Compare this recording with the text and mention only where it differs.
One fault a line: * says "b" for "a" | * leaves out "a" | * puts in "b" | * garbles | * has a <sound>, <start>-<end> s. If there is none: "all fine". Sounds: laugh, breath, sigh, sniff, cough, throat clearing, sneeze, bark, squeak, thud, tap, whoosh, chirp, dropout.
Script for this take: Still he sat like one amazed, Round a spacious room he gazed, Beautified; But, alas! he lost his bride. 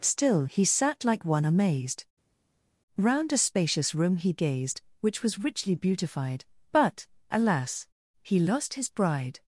* puts in "Which was richly"